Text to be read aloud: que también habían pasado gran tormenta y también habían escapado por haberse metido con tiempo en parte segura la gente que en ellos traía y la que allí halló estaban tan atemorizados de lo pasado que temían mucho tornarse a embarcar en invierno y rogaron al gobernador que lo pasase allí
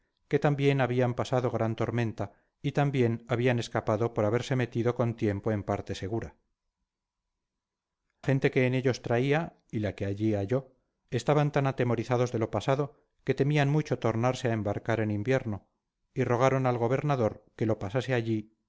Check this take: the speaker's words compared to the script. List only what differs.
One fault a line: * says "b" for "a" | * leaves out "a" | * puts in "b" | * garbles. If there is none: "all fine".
* leaves out "la"